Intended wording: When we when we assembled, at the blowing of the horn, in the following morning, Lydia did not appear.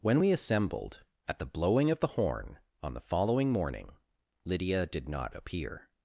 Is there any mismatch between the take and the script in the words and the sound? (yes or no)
yes